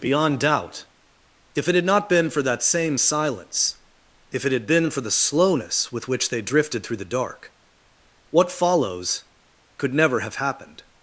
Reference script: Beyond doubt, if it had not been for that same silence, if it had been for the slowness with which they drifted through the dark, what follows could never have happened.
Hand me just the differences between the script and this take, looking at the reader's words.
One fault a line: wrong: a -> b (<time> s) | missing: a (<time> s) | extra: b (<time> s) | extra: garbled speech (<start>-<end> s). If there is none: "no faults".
no faults